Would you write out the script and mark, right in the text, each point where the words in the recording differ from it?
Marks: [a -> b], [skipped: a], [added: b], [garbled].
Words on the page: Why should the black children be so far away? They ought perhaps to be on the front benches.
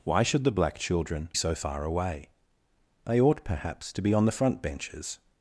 Why should the black children [skipped: be] so far away? They ought perhaps to be on the front benches.